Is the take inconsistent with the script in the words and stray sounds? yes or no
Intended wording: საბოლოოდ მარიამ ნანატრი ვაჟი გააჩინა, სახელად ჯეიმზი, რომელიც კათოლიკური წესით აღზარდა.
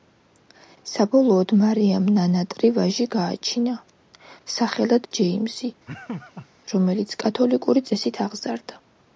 yes